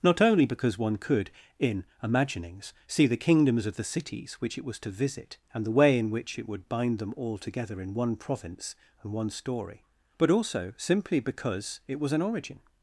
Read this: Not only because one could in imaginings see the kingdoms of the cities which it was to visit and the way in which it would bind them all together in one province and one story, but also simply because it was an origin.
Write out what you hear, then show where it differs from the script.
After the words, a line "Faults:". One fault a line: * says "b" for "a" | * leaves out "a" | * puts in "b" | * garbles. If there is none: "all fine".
Not only because one could in imaginings see the kingdoms of the cities which it was to visit and the way in which it would bind them all together in one province and one story, but also simply because it was an origin.
Faults:
all fine